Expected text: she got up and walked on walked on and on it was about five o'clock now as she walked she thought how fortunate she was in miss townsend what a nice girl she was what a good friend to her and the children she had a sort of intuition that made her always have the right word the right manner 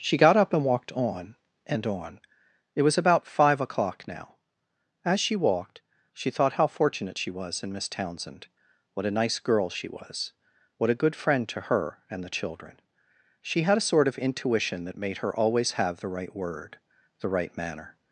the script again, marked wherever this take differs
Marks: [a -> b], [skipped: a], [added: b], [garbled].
she got up and walked on [skipped: walked on] and on it was about five o'clock now as she walked she thought how fortunate she was in miss townsend what a nice girl she was what a good friend to her and the children she had a sort of intuition that made her always have the right word the right manner